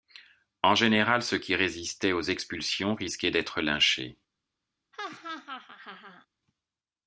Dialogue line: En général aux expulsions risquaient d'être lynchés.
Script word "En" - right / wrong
right